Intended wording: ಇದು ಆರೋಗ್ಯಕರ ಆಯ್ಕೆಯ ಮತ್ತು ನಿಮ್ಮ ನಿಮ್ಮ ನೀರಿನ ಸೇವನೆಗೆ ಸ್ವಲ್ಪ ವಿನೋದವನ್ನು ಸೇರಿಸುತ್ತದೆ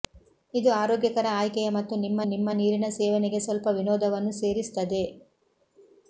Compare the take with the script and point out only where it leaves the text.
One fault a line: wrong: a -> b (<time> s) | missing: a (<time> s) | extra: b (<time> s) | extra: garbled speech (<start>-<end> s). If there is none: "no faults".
no faults